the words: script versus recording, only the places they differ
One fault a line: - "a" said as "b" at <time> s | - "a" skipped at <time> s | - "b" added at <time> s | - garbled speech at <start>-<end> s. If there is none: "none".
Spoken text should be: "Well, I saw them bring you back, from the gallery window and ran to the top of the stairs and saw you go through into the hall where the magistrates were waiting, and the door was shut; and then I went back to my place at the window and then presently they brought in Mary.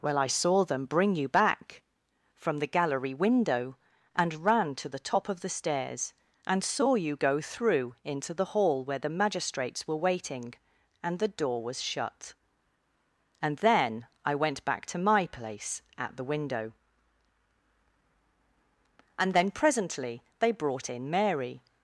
none